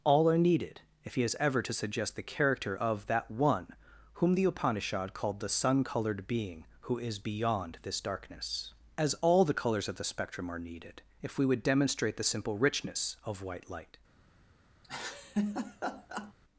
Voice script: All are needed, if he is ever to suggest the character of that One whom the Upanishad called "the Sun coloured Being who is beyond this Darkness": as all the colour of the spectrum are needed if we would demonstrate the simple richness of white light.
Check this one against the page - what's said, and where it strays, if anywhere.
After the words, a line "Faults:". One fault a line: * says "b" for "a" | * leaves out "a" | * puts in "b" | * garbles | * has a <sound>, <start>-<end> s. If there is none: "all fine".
All are needed, if he is ever to suggest the character of that One whom the Upanishad called "the Sun coloured Being who is beyond this Darkness": as all the colours of the spectrum are needed if we would demonstrate the simple richness of white light.
Faults:
* says "colours" for "colour"
* has a laugh, 14.8-16.3 s